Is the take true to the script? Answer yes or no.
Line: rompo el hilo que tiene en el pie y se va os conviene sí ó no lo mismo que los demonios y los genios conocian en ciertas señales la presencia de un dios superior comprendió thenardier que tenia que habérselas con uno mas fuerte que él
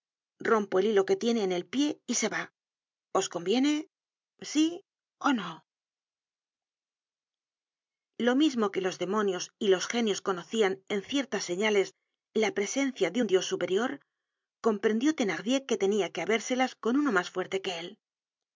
yes